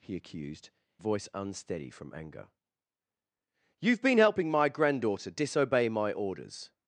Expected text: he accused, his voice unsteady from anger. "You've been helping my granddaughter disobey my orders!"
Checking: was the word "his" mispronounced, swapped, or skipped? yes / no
yes